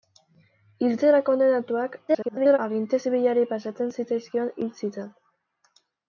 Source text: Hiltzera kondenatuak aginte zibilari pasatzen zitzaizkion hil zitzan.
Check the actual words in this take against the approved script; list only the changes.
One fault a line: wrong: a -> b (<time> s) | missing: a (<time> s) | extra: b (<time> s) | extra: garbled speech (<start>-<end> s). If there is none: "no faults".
extra: garbled speech (2.1-2.6 s)